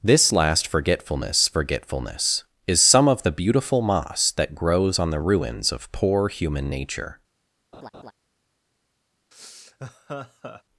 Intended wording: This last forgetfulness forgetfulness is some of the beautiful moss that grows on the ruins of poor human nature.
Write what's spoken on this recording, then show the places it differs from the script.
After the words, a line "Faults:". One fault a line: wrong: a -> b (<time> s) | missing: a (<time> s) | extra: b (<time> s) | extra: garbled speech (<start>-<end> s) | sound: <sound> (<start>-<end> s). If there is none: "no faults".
This last forgetfulness forgetfulness is some of the beautiful moss that grows on the ruins of poor human nature.
Faults:
sound: laugh (7.7-8.1 s)
sound: laugh (9.3-10.6 s)